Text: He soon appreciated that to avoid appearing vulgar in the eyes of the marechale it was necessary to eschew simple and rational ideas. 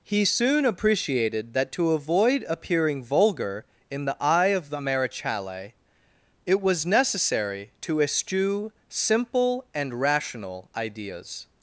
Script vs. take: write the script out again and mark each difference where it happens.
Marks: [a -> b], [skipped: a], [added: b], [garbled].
He soon appreciated that to avoid appearing vulgar in the [eyes -> eye] of the marechale it was necessary to eschew simple and rational ideas.